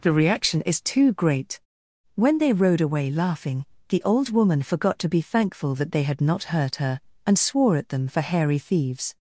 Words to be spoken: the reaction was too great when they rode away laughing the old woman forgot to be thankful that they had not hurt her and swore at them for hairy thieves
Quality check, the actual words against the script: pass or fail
fail